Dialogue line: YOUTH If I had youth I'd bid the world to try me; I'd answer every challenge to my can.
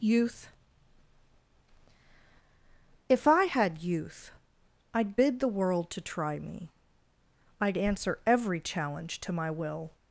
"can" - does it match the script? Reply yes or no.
no